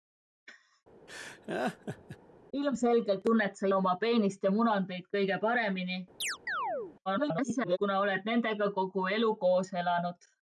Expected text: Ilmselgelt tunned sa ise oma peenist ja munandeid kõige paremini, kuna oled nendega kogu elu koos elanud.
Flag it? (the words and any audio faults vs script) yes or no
yes